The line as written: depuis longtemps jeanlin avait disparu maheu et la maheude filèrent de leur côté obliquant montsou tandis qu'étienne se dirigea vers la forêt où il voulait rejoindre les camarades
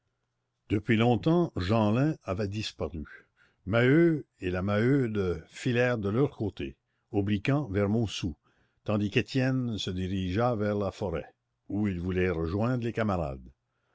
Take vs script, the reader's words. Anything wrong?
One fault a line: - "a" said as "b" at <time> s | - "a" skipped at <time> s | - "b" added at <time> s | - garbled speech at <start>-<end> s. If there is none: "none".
- "vers" added at 7.7 s